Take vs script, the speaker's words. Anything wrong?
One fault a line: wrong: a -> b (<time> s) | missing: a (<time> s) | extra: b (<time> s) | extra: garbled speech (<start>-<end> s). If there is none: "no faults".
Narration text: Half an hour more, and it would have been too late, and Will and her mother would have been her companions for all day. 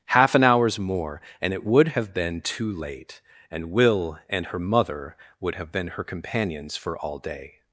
wrong: hour -> hours (0.4 s)